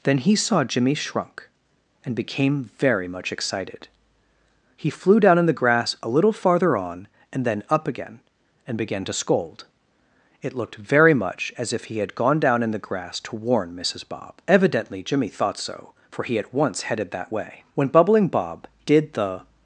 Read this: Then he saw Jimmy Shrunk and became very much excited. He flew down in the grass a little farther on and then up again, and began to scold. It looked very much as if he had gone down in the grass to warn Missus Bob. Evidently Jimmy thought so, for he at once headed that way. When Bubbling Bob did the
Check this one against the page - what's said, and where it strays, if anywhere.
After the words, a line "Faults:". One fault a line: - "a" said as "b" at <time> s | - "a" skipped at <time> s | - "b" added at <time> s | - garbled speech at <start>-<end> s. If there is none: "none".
Then he saw Jimmy Shrunk and became very much excited. He flew down in the grass a little farther on and then up again, and began to scold. It looked very much as if he had gone down in the grass to warn Missus Bob. Evidently Jimmy thought so, for he at once headed that way. When Bubbling Bob did the
Faults:
none